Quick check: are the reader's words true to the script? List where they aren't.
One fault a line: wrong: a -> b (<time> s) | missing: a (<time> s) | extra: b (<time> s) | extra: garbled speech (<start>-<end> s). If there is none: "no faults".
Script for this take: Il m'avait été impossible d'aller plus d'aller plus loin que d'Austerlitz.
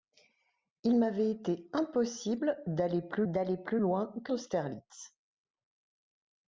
no faults